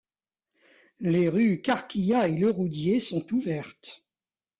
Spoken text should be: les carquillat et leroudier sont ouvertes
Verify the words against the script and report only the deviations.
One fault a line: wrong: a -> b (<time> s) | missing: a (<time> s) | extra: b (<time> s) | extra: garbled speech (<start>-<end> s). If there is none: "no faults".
extra: rues (1.3 s)